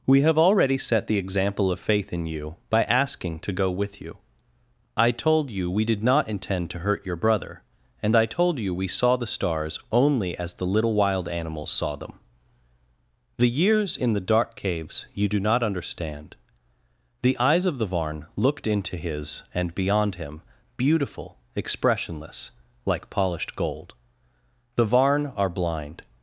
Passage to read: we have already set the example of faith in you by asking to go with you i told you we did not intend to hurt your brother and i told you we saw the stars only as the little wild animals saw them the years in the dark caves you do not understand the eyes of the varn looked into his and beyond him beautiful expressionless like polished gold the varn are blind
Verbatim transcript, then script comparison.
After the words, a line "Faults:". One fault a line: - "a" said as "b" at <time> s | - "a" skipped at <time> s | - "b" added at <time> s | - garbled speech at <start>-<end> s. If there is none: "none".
we have already set the example of faith in you by asking to go with you i told you we did not intend to hurt your brother and i told you we saw the stars only as the little wild animals saw them the years in the dark caves you do not understand the eyes of the varn looked into his and beyond him beautiful expressionless like polished gold the varn are blind
Faults:
none